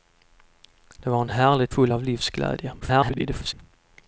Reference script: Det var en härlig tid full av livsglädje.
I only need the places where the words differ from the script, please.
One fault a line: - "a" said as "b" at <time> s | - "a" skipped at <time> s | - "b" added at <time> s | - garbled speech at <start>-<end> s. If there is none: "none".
- "tid" skipped at 1.7 s
- garbled speech at 2.8-3.5 s